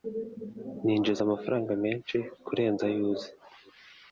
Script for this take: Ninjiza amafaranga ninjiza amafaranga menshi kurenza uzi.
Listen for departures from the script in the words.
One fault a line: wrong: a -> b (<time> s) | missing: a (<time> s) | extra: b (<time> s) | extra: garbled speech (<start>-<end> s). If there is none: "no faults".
missing: ninjiza amafaranga (1.7 s)
extra: ayo (2.9 s)